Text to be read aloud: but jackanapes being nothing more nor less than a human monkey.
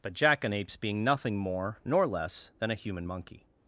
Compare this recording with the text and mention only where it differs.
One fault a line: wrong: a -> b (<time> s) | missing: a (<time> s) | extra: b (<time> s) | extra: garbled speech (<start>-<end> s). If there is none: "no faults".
no faults